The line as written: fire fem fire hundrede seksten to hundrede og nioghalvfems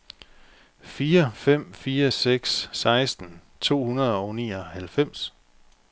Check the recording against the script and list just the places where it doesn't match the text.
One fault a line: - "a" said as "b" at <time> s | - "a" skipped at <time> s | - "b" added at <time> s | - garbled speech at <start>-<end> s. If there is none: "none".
- "hundrede" said as "seks" at 2.1 s